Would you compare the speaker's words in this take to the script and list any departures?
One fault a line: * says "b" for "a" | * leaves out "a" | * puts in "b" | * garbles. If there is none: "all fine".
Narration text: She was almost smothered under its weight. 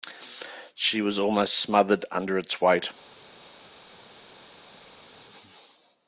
all fine